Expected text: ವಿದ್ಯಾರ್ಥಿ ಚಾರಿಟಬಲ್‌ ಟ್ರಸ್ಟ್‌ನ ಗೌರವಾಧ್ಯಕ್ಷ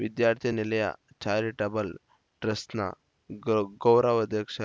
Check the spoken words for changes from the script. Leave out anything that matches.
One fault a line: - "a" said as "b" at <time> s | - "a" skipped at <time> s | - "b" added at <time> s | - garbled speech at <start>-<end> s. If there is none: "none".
- "ನಿಲಯ" added at 0.5 s